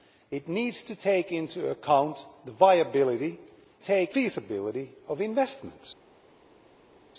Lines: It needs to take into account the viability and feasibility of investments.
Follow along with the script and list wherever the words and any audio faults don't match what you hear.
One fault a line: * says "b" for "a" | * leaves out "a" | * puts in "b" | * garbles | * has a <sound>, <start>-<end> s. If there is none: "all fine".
* says "take" for "and"